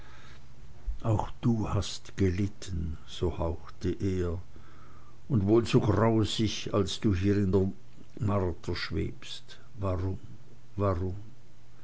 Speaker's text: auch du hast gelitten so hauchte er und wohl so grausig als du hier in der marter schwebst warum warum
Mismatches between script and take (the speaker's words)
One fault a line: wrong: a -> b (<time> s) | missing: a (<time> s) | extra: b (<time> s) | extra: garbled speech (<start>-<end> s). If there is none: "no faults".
no faults